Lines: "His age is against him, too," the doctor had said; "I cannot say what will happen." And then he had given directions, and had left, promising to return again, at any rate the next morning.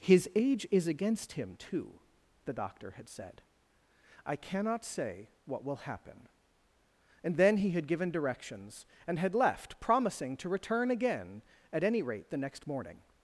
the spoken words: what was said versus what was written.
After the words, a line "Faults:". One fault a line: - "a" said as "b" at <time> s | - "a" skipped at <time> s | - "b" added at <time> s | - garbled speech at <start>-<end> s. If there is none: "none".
"His age is against him, too," the doctor had said; "I cannot say what will happen." And then he had given directions, and had left, promising to return again, at any rate the next morning.
Faults:
none